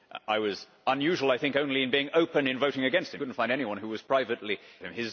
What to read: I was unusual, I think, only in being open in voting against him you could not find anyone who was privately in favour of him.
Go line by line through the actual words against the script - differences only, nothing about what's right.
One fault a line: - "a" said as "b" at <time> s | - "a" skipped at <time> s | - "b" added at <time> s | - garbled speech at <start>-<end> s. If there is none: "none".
- "you" skipped at 3.2 s
- "in favour of" skipped at 4.6 s